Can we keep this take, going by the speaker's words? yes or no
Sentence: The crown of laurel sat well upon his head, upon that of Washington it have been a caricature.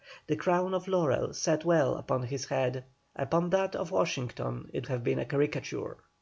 yes